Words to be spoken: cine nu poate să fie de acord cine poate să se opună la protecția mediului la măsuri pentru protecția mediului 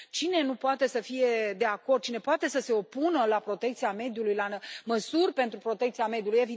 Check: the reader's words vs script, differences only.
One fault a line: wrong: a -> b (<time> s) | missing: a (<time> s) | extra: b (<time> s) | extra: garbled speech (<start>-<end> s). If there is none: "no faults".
no faults